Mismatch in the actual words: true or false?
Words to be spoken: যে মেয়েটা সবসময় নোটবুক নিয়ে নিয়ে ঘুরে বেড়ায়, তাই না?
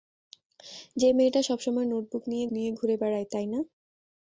false